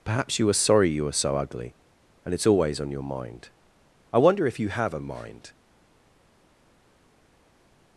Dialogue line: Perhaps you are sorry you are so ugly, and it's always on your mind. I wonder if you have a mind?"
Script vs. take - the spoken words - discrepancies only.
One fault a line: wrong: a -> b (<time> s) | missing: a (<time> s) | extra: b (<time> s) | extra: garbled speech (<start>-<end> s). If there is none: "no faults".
no faults